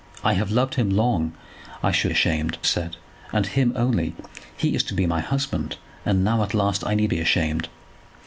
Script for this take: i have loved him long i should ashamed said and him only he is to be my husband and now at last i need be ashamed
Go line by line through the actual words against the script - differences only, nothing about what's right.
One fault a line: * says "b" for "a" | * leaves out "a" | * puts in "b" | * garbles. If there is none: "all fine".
all fine